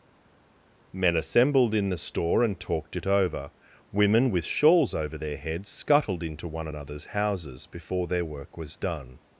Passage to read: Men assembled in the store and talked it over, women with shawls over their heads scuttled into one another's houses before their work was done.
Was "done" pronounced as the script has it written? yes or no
yes